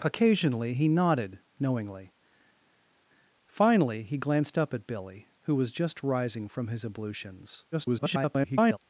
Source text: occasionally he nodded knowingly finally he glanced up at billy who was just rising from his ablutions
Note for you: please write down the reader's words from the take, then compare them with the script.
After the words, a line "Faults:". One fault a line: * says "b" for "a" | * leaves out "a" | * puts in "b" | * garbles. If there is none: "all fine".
occasionally he nodded knowingly finally he glanced up at billy who was just rising from his ablutions [garbled]
Faults:
* garbles